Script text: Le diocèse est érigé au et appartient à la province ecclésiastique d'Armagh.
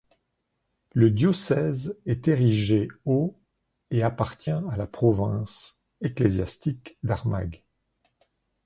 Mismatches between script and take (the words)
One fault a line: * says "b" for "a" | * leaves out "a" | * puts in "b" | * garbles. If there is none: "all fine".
all fine